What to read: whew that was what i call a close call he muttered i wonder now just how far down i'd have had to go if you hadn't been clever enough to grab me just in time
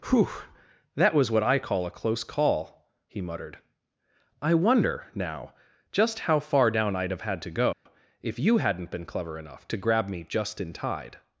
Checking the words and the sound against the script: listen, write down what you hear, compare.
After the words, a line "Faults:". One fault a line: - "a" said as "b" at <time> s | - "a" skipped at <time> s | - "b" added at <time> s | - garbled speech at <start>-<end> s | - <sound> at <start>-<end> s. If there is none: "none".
whew that was what i call a close call he muttered i wonder now just how far down i'd have had to go if you hadn't been clever enough to grab me just in tide
Faults:
- dropout at 7.7-7.9 s
- "time" said as "tide" at 10.7 s